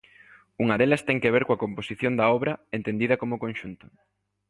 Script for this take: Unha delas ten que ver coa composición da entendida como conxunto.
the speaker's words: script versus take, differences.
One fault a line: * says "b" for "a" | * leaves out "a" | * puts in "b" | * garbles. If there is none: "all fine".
* puts in "obra"